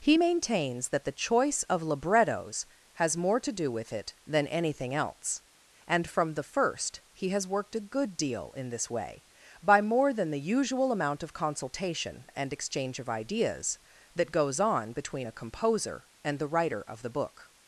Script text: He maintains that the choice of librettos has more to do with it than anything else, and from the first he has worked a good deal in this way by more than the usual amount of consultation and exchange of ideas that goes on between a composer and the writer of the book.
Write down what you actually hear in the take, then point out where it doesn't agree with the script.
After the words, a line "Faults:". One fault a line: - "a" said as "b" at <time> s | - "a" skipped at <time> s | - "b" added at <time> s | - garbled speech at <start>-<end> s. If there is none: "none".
He maintains that the choice of librettos has more to do with it than anything else, and from the first he has worked a good deal in this way by more than the usual amount of consultation and exchange of ideas that goes on between a composer and the writer of the book.
Faults:
none